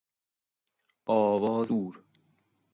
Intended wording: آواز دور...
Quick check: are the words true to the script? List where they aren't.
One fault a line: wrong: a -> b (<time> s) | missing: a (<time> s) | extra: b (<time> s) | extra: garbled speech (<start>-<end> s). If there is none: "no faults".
no faults